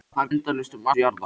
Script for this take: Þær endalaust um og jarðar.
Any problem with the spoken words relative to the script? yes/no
no